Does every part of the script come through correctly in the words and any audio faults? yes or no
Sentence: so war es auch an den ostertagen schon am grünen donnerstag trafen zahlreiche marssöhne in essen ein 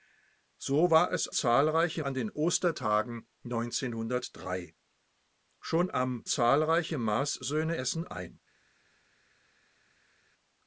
no